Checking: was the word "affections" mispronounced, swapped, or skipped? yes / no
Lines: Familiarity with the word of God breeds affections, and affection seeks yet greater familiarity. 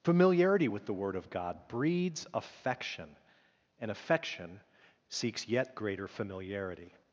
yes